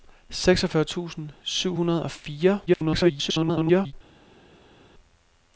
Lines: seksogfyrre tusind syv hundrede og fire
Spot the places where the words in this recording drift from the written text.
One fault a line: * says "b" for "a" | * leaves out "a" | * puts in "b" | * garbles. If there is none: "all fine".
* garbles